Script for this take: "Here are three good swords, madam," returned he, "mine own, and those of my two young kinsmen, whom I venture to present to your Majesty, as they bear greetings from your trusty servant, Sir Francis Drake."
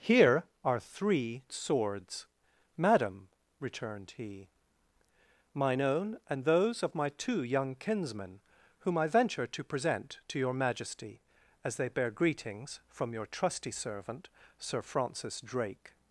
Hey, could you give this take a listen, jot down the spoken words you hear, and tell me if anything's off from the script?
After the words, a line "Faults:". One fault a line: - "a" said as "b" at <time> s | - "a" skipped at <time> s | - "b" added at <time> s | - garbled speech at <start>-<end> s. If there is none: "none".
"Here are three swords, madam," returned he, "mine own, and those of my two young kinsmen, whom I venture to present to your Majesty, as they bear greetings from your trusty servant, Sir Francis Drake."
Faults:
- "good" skipped at 1.4 s